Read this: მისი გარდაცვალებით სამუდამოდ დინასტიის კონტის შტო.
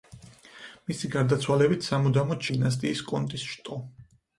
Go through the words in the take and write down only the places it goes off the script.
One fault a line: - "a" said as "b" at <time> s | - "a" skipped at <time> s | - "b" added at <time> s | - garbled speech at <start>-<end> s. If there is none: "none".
none